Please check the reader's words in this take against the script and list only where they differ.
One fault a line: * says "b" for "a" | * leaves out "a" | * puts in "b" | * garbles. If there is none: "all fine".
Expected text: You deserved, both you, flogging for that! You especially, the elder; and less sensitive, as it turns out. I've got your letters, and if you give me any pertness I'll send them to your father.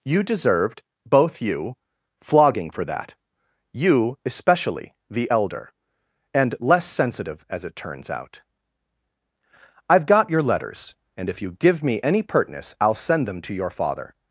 all fine